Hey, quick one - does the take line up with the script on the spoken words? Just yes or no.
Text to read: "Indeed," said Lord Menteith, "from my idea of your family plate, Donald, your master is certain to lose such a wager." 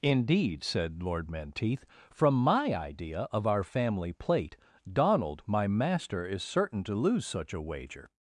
no